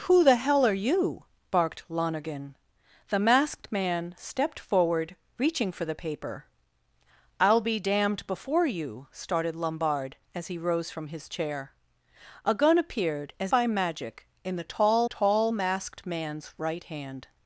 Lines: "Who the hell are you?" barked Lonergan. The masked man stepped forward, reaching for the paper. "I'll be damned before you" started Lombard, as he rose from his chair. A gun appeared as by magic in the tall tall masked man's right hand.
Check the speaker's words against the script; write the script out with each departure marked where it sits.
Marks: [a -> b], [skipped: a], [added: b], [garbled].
"Who the hell are you?" barked Lonergan. The masked man stepped forward, reaching for the paper. "I'll be damned before you" started Lombard, as he rose from his chair. A gun appeared as by magic in the tall tall masked man's right hand.